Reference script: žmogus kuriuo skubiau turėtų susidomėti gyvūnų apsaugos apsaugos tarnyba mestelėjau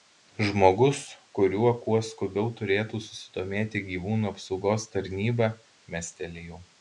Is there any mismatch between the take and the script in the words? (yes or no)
yes